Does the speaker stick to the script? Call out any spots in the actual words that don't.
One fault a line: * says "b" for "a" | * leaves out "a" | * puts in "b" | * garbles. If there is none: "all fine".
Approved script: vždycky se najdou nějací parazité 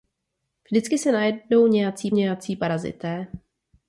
* puts in "nějací"